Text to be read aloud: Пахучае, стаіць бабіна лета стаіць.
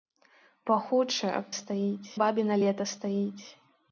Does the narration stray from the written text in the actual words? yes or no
no